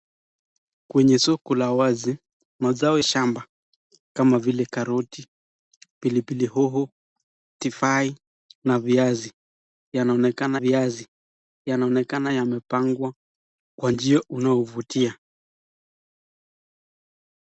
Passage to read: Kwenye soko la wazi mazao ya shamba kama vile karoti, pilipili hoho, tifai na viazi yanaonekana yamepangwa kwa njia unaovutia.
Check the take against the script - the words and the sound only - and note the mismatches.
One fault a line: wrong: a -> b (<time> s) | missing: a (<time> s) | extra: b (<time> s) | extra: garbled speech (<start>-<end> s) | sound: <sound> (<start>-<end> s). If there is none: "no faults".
missing: ya (3.0 s)
extra: viazi yanaonekana (10.5 s)